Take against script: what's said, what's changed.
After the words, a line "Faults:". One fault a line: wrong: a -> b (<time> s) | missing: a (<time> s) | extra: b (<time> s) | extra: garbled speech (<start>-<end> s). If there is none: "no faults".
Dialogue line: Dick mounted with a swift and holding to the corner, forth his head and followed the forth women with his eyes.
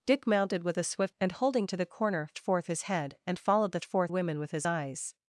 Dick mounted with a swift and holding to the corner, forth his head and followed the forth women with his eyes.
Faults:
no faults